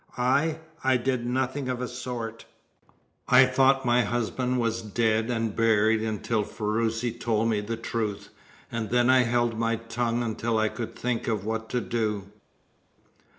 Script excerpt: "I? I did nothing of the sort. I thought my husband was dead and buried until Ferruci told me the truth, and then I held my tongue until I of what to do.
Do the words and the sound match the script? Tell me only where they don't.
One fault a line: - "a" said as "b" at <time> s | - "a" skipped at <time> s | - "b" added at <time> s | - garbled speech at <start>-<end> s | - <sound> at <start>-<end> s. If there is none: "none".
- "could think" added at 10.7 s